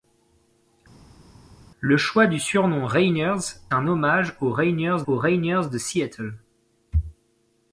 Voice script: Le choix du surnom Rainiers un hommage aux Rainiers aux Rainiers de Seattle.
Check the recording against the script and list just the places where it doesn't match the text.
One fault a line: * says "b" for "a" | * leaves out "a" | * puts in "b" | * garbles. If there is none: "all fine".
all fine